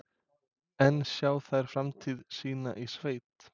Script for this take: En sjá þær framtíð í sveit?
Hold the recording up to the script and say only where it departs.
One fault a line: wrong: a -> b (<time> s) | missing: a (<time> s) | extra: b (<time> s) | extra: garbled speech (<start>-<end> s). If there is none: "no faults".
extra: sína (2.4 s)